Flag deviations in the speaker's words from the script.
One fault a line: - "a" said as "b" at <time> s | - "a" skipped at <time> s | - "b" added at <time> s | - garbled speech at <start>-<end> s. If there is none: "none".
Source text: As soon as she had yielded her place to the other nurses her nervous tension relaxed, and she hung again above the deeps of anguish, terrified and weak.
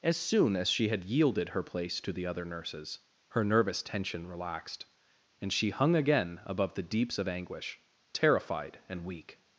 none